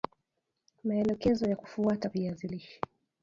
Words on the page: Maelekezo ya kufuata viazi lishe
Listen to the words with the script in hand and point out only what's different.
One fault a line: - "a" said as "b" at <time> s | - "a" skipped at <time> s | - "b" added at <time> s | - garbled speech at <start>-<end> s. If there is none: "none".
none